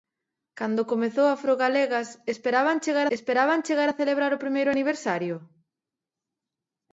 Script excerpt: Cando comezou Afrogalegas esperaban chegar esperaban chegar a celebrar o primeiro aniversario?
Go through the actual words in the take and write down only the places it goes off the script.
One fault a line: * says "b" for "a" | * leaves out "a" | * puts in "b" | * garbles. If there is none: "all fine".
all fine